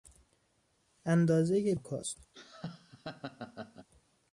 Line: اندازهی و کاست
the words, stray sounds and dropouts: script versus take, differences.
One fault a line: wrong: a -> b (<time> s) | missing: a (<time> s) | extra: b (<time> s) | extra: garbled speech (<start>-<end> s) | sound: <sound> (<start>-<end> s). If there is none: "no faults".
sound: laugh (2.3-3.9 s)